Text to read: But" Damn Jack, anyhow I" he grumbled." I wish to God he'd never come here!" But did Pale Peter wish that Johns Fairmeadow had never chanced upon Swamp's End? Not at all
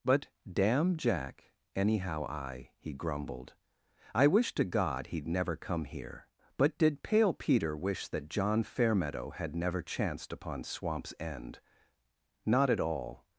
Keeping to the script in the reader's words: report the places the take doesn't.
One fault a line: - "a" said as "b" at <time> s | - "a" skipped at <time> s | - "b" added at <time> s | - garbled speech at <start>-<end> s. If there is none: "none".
- "Johns" said as "John" at 8.3 s